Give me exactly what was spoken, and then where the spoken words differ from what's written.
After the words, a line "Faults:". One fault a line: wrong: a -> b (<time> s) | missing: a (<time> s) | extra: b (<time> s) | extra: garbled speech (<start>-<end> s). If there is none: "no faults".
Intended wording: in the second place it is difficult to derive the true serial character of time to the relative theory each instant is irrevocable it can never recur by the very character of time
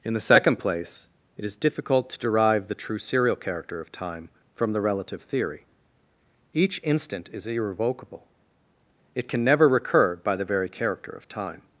in the second place it is difficult to derive the true serial character of time from the relative theory each instant is irrevocable it can never recur by the very character of time
Faults:
wrong: to -> from (4.5 s)